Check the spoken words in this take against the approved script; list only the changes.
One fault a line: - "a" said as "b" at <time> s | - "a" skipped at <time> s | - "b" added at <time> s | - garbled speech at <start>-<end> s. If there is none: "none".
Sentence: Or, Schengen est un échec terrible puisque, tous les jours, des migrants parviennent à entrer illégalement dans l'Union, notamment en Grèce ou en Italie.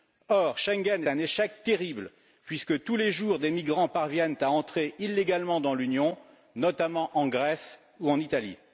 - "est" skipped at 1.0 s